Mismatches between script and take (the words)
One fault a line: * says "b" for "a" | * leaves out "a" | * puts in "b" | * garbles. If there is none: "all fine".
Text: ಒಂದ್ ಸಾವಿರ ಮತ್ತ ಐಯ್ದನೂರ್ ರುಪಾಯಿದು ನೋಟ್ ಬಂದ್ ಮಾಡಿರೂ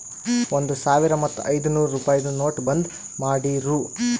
all fine